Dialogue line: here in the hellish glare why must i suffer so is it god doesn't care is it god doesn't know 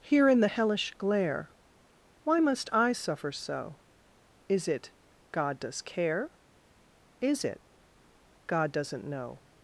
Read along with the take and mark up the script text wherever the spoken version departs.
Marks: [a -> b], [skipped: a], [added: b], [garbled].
here in the hellish glare why must i suffer so is it god [doesn't -> does] care is it god doesn't know